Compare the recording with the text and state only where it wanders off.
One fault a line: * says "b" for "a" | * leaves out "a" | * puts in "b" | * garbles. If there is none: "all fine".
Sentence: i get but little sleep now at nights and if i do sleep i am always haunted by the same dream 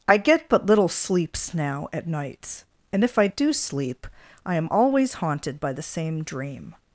* says "sleeps" for "sleep"